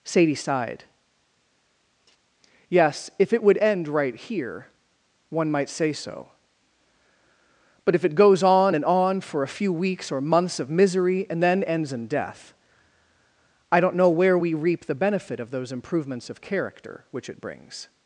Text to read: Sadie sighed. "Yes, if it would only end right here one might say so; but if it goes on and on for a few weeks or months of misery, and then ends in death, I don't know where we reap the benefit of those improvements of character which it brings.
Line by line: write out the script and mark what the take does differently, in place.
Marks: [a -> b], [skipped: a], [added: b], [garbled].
Sadie sighed. "Yes, if it would [skipped: only] end right here one might say so; but if it goes on and on for a few weeks or months of misery, and then ends in death, I don't know where we reap the benefit of those improvements of character which it brings.